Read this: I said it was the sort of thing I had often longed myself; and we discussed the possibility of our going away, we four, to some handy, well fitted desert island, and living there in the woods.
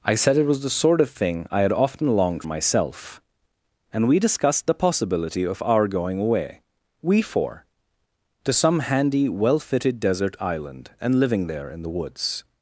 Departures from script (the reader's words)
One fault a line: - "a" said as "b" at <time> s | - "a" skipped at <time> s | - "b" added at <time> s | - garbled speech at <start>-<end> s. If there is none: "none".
none